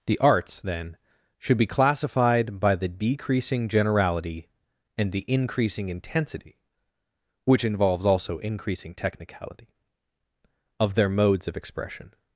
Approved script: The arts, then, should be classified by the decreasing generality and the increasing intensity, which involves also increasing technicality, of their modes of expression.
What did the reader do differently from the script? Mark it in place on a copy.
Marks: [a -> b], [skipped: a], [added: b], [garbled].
The arts, then, should be classified by the decreasing generality and the increasing intensity, which involves also increasing technicality, of their modes of expression.